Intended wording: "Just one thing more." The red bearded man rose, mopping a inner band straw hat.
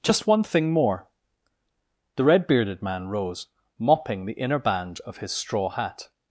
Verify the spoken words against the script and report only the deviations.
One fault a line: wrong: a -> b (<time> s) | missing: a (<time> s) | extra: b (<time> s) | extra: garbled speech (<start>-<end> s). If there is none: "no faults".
wrong: a -> the (4.2 s)
extra: of his (5.0 s)